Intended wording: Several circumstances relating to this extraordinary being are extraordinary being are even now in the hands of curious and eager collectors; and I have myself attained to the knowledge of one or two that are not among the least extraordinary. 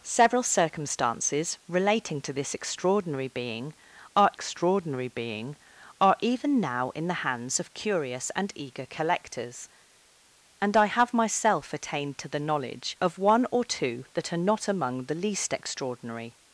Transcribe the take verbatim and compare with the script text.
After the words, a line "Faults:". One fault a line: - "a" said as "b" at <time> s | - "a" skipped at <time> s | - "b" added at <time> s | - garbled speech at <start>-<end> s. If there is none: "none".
Several circumstances relating to this extraordinary being are extraordinary being are even now in the hands of curious and eager collectors; and I have myself attained to the knowledge of one or two that are not among the least extraordinary.
Faults:
none